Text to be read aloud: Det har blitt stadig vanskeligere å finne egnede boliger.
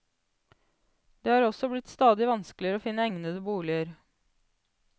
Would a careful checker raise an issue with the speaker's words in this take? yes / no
yes